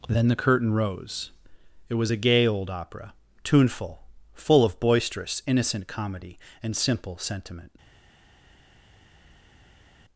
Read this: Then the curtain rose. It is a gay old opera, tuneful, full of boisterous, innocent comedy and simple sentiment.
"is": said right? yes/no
no